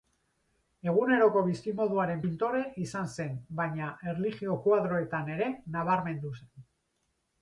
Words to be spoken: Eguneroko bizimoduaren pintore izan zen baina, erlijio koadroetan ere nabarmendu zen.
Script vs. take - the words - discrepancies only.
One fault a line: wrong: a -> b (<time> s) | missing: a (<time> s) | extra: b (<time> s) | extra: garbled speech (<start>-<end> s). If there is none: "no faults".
no faults